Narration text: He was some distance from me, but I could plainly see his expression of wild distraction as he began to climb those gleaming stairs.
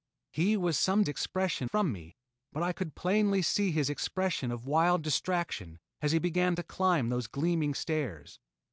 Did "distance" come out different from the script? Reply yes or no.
yes